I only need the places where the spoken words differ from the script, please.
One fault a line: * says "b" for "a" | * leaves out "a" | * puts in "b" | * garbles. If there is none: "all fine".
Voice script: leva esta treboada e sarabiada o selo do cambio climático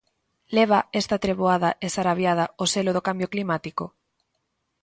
all fine